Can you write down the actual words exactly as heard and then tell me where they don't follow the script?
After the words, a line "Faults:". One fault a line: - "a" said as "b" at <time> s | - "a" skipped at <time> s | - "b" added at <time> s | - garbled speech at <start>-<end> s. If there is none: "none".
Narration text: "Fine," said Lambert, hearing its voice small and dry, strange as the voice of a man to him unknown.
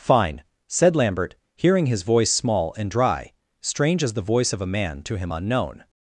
"Fine," said Lambert, hearing his voice small and dry, strange as the voice of a man to him unknown.
Faults:
- "its" said as "his" at 1.9 s